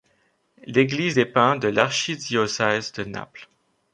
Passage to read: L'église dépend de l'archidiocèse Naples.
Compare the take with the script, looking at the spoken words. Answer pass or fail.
fail